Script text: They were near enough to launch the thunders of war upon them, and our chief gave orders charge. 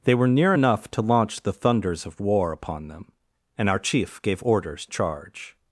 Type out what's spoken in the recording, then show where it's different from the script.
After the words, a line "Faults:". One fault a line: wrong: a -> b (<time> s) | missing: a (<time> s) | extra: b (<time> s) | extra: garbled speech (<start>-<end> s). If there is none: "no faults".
They were near enough to launch the thunders of war upon them, and our chief gave orders charge.
Faults:
no faults